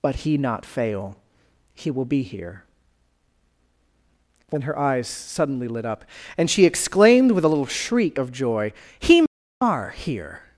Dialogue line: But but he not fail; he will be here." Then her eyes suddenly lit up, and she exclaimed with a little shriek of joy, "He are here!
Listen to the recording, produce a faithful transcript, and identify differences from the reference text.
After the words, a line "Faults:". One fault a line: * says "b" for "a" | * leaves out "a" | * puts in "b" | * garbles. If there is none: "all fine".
But he not fail; he will be here." Then her eyes suddenly lit up, and she exclaimed with a little shriek of joy, "He are here!
Faults:
* leaves out "but"